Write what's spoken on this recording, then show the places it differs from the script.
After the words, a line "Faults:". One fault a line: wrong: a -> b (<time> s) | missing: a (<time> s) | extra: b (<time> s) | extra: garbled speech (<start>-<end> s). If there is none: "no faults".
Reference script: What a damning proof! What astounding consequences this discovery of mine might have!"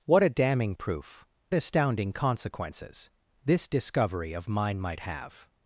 What a damning proof! Astounding consequences this discovery of mine might have!"
Faults:
missing: What (1.2 s)